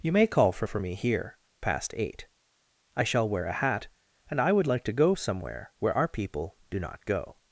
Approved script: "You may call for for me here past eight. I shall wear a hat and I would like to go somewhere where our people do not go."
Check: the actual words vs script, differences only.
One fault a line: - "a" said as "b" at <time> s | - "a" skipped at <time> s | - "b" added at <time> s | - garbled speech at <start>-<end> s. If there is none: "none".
none